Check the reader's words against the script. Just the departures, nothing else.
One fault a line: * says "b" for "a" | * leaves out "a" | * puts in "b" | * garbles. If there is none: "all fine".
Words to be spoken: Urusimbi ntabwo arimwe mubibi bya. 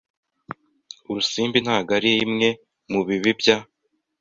all fine